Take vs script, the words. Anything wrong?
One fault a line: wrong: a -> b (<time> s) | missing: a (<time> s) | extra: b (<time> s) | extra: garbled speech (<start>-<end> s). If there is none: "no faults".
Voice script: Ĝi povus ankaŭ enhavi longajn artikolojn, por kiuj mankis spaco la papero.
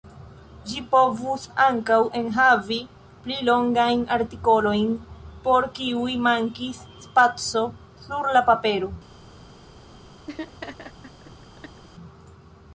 extra: pli (3.2 s)
extra: sur (8.1 s)